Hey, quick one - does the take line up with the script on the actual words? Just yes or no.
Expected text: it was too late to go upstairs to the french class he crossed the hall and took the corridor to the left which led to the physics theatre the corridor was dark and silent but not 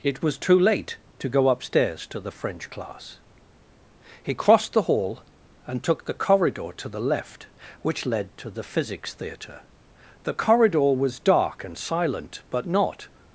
yes